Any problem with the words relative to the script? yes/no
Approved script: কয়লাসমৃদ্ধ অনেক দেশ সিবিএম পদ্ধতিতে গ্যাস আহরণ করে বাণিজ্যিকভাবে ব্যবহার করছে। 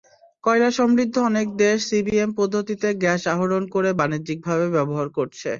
no